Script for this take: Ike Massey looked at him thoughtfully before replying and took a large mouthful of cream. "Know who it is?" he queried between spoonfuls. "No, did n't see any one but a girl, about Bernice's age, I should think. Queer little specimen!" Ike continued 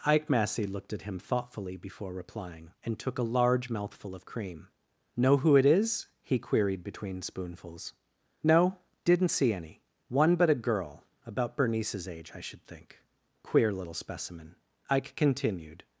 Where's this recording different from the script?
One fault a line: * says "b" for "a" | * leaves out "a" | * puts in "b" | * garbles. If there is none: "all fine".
all fine